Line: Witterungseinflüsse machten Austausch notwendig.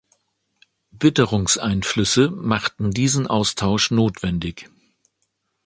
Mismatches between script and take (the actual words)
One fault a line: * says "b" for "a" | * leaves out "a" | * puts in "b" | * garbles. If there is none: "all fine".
* puts in "diesen"